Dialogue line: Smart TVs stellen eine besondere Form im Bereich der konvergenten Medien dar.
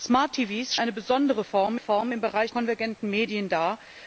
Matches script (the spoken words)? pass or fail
fail